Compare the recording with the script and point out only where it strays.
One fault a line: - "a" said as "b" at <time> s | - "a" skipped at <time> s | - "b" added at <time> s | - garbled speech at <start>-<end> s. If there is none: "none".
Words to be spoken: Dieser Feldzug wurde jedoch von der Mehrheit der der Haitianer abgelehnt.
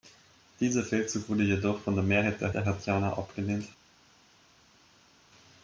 none